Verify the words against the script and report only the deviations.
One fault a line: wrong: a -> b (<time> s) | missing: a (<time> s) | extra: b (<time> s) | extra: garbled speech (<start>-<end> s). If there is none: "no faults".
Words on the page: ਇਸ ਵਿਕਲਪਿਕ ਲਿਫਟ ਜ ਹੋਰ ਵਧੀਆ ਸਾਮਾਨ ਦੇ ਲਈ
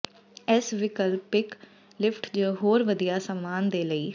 no faults